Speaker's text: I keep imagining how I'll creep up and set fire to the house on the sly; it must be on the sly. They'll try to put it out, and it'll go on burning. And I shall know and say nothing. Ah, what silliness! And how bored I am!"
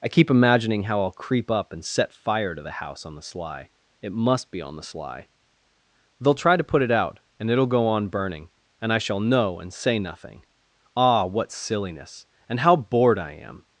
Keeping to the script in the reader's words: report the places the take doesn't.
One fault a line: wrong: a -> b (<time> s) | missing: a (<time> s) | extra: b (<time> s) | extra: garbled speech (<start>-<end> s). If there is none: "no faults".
no faults